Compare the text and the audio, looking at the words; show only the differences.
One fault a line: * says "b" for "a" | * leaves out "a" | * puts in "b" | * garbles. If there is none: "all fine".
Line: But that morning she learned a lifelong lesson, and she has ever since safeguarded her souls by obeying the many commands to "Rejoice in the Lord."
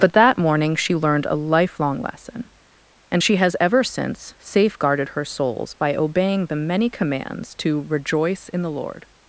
all fine